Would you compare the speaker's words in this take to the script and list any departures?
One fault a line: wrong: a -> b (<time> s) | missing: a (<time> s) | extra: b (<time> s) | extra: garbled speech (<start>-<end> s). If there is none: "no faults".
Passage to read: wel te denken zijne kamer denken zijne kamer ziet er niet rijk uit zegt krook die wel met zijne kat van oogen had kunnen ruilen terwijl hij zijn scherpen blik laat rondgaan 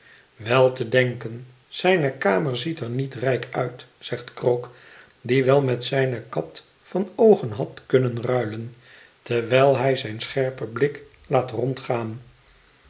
missing: denken zijne kamer (2.6 s)